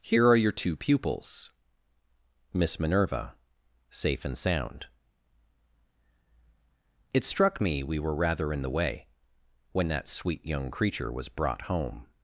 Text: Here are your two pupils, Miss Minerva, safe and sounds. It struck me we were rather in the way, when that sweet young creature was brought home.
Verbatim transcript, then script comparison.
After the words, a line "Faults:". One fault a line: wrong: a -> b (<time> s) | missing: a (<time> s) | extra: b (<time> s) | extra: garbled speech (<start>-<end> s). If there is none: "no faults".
Here are your two pupils, Miss Minerva, safe and sound. It struck me we were rather in the way, when that sweet young creature was brought home.
Faults:
wrong: sounds -> sound (4.3 s)